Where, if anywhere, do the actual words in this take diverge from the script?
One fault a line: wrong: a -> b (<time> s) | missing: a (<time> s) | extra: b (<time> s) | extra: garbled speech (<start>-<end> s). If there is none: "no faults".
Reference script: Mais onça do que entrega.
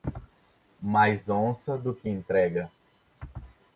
no faults